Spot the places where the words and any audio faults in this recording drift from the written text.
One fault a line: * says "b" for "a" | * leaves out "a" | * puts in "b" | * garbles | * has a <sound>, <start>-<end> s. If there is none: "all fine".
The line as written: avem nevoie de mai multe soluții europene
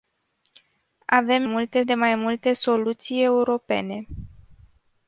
* says "multe" for "nevoie"